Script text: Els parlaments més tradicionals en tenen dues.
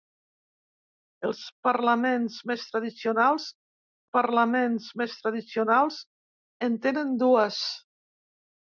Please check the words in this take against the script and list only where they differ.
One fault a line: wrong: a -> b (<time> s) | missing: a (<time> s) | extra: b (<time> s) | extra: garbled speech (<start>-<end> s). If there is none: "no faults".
extra: parlaments més tradicionals (4.2 s)